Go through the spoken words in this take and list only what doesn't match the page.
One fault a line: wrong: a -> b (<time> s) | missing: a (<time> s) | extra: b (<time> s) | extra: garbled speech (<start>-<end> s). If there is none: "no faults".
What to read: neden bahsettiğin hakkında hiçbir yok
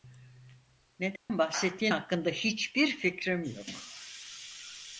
extra: fikrim (3.0 s)